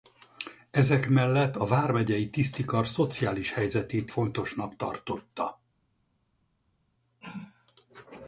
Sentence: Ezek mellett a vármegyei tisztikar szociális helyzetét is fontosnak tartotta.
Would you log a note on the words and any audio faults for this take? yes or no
yes